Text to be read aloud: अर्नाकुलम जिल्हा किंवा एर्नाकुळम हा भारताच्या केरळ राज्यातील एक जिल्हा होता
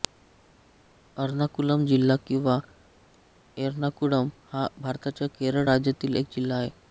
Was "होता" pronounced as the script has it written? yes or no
no